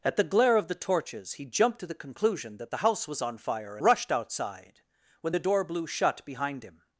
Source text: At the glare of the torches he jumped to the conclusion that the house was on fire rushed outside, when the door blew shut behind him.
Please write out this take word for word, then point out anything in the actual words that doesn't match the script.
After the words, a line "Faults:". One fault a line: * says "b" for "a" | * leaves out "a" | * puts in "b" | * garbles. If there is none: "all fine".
At the glare of the torches he jumped to the conclusion that the house was on fire rushed outside, when the door blew shut behind him.
Faults:
all fine